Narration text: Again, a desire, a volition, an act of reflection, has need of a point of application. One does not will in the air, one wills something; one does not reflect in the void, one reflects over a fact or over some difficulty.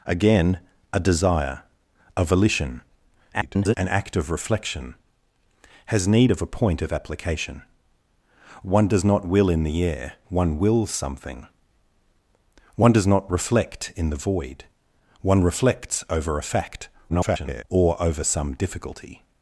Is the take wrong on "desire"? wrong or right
right